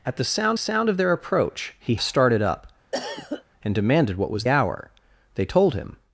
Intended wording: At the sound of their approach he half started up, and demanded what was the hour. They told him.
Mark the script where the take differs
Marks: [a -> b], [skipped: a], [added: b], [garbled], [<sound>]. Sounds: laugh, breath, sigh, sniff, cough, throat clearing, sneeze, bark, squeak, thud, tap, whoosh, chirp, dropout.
At the sound [added: sound] of their approach he [skipped: half] started up, [cough] and demanded what was [skipped: the] hour. They told him.